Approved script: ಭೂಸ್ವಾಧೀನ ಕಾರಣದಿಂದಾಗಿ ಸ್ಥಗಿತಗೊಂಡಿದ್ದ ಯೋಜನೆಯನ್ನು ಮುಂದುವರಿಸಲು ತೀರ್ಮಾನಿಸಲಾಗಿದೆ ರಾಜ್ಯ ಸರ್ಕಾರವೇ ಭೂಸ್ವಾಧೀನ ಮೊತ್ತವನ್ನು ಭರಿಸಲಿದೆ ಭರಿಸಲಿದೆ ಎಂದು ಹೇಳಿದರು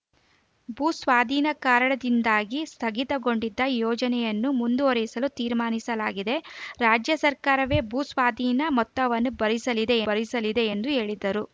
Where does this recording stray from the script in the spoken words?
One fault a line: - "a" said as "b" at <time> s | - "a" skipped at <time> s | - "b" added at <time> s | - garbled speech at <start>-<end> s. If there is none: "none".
none